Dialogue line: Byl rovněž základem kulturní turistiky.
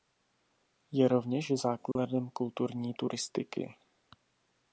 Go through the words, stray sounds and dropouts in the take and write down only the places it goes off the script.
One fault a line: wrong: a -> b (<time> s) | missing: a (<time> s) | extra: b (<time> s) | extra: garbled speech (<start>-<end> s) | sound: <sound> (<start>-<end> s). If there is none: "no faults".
wrong: Byl -> Je (0.9 s)
sound: dropout (1.9-2.0 s)